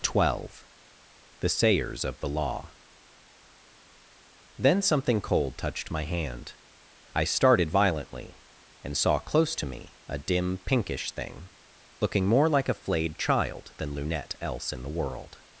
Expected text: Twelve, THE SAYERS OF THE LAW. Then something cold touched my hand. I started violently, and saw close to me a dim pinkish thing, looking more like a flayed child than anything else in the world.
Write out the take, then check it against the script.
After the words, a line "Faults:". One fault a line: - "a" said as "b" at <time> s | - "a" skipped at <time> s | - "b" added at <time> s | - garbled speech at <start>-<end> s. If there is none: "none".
Twelve, THE SAYERS OF THE LAW. Then something cold touched my hand. I started violently, and saw close to me a dim pinkish thing, looking more like a flayed child than lunette else in the world.
Faults:
- "anything" said as "lunette" at 13.9 s